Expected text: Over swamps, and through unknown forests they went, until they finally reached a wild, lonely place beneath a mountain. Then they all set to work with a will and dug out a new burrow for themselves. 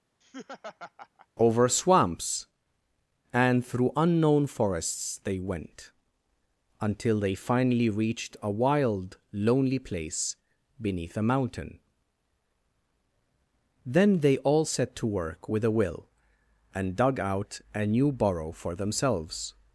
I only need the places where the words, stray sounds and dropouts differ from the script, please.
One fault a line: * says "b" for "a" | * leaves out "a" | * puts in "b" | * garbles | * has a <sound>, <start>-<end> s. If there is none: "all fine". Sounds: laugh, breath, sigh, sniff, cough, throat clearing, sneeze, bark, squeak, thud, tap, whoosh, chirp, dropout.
* has a laugh, 0.2-1.3 s